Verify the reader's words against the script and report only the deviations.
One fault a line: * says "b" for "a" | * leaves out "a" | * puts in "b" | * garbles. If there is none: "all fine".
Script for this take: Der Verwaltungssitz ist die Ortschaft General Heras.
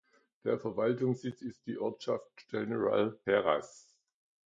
all fine